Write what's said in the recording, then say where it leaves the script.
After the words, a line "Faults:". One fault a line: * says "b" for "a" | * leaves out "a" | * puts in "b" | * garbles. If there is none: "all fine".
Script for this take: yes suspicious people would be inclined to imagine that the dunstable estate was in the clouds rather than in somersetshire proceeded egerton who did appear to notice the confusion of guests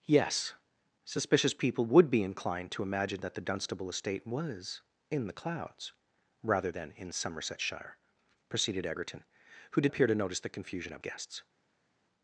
yes suspicious people would be inclined to imagine that the dunstable estate was in the clouds rather than in somersetshire proceeded egerton who did appear to notice the confusion of guests
Faults:
all fine